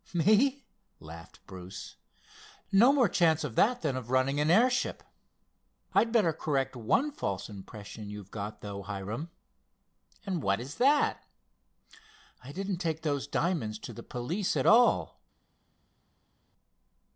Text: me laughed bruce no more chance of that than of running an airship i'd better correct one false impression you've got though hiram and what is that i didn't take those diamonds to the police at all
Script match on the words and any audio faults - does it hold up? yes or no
yes